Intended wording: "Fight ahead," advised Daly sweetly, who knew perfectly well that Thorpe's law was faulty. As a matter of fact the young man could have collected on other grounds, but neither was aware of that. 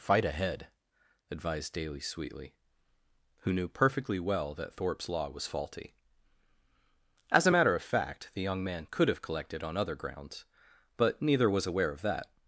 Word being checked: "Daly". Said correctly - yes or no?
yes